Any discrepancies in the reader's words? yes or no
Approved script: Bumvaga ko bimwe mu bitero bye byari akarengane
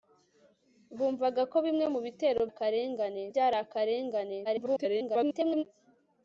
yes